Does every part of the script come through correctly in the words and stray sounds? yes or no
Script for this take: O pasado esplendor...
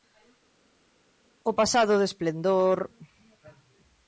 no